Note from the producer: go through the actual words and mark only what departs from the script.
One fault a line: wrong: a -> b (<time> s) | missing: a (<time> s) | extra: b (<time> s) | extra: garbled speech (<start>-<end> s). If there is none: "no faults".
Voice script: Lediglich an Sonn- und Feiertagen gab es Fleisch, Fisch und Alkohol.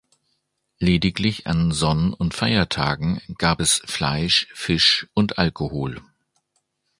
no faults